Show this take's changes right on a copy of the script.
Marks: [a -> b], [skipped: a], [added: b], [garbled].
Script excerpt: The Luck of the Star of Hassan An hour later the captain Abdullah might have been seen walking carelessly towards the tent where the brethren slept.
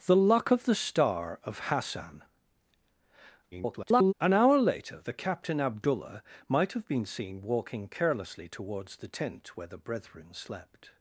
The Luck of the Star of Hassan [garbled] An hour later the captain Abdullah might have been seen walking carelessly towards the tent where the brethren slept.